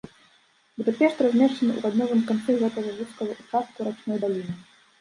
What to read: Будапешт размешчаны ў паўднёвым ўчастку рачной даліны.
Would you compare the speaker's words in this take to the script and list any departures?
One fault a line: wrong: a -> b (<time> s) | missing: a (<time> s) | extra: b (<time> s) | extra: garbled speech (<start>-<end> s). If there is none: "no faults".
extra: канцы гэтага вузкага (2.3 s)